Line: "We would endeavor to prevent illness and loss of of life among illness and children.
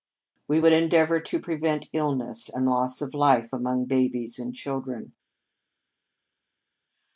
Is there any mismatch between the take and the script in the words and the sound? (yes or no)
yes